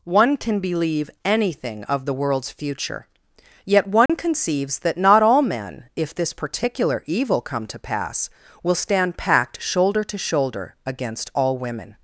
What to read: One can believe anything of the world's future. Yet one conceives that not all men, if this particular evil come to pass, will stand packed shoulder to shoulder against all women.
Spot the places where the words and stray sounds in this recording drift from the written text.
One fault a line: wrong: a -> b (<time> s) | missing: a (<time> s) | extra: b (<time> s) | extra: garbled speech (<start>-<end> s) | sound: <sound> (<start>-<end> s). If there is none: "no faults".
sound: dropout (4.1-4.1 s)